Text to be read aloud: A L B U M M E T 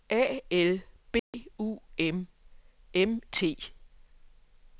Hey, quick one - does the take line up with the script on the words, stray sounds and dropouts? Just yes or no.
no